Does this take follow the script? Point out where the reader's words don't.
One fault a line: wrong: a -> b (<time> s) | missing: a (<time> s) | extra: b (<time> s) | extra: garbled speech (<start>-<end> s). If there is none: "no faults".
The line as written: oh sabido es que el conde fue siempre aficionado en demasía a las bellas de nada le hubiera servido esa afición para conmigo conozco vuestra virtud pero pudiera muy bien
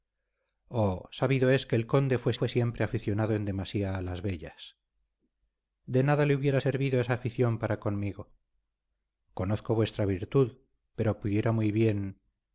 extra: fue (2.3 s)